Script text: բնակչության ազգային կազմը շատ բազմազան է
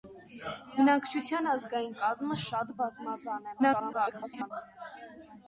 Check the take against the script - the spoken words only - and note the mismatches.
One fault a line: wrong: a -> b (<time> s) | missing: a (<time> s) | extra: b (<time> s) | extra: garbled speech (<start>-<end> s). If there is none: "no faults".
extra: garbled speech (3.6-4.5 s)